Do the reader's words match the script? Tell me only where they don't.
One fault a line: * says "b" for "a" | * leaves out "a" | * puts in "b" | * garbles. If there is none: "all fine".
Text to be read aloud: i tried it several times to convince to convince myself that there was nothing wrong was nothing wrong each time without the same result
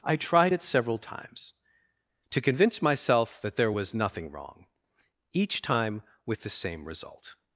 * leaves out "to convince"
* leaves out "was nothing wrong"
* says "with" for "without"